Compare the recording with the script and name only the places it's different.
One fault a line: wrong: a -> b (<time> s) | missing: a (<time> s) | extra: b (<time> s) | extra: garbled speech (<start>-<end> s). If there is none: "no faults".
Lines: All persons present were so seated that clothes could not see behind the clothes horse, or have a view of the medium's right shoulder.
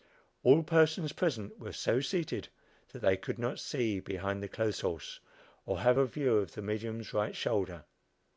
wrong: clothes -> they (3.0 s)